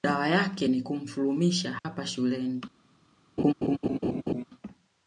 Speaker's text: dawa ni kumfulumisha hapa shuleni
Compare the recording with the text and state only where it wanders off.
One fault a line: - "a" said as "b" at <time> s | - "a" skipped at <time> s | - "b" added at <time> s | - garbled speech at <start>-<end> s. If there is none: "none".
- "yake" added at 0.3 s